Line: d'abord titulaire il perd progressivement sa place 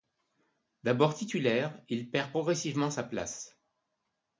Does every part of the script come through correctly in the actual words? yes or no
yes